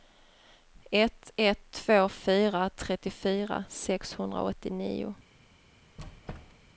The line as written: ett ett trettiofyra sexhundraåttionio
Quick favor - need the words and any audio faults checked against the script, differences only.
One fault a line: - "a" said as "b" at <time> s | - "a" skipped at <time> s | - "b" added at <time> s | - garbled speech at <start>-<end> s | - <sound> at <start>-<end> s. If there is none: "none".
- "två fyra" added at 1.7 s
- squeak at 6.0-6.7 s